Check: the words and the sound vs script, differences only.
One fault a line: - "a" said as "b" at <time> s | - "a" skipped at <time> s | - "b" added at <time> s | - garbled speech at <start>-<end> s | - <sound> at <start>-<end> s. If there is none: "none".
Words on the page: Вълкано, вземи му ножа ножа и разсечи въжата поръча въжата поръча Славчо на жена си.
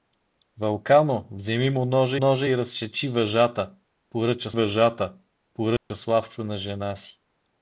- dropout at 5.8-5.9 s